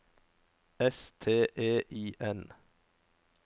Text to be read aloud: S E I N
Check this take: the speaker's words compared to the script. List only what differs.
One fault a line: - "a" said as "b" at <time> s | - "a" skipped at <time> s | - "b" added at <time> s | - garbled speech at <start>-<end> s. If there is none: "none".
- "T" added at 1.2 s